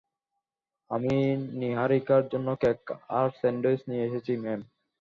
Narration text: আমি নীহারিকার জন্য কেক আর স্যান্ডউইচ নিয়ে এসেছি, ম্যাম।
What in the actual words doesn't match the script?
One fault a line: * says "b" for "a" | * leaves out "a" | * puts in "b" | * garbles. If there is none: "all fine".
all fine